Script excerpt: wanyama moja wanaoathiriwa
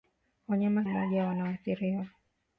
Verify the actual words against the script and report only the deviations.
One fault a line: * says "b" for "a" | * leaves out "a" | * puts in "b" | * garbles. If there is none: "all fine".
all fine